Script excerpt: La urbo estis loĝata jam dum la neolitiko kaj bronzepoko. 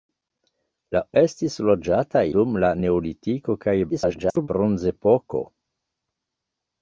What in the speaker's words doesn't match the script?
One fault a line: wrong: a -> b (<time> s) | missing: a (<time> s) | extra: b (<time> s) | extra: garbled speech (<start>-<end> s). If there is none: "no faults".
missing: urbo (1.0 s)
missing: jam (2.2 s)
extra: garbled speech (3.9-4.5 s)